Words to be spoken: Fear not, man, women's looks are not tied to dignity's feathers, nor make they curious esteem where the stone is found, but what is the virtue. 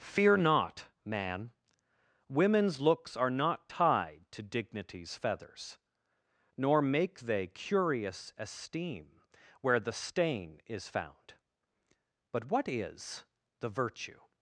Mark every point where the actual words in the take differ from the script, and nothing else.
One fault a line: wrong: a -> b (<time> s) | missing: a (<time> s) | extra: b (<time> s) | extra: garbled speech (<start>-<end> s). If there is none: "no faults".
wrong: stone -> stain (9.9 s)